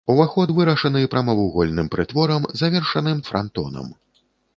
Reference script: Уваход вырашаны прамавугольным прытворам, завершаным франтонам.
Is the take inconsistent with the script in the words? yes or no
no